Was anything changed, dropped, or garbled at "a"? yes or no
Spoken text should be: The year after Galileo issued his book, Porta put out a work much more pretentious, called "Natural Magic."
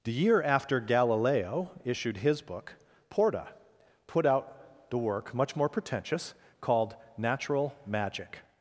yes